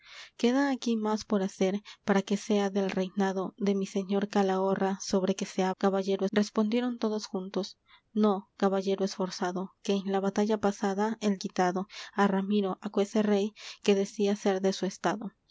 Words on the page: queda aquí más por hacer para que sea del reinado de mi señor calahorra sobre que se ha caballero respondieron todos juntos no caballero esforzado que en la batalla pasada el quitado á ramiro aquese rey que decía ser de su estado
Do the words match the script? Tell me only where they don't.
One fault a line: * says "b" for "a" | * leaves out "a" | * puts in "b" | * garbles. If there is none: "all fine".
all fine